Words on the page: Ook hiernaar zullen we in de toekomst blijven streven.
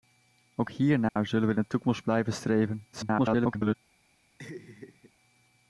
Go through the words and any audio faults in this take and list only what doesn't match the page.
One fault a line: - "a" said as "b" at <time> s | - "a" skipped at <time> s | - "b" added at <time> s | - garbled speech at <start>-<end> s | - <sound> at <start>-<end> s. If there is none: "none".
- dropout at 1.1-1.2 s
- garbled speech at 2.9-3.8 s
- laugh at 4.4-5.1 s